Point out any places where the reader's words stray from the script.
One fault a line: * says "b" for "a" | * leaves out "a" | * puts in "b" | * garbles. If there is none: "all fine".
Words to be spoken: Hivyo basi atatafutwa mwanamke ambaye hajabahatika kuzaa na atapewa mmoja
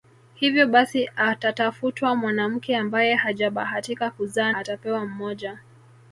* leaves out "na"